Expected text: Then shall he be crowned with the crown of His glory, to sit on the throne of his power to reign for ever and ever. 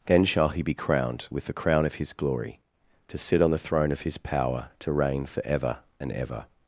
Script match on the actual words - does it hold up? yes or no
yes